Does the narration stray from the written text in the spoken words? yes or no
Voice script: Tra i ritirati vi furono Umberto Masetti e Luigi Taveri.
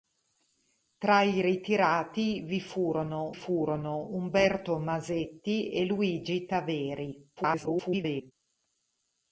yes